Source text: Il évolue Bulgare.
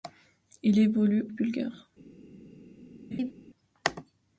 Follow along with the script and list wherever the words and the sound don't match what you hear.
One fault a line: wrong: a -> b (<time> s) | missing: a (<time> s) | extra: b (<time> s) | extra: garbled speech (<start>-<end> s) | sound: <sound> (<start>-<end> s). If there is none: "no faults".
sound: laugh (3.1-3.3 s)